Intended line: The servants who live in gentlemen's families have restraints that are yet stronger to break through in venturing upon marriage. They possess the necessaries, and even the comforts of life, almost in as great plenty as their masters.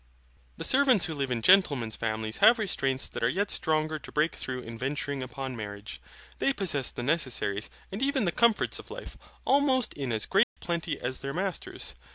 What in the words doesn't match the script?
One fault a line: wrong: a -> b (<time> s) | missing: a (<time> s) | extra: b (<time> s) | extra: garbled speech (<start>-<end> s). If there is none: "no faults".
no faults